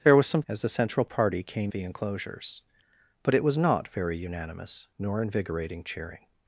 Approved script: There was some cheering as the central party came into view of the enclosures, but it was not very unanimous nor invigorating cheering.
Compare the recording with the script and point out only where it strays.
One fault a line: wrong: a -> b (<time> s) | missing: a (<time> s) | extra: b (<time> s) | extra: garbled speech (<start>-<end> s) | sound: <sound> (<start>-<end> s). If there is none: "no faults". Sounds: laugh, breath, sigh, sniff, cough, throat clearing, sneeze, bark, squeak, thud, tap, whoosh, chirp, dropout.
missing: cheering (0.4 s)
missing: into view of (1.7 s)